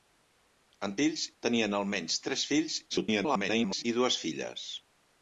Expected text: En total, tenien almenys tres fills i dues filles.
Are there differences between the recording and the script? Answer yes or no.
yes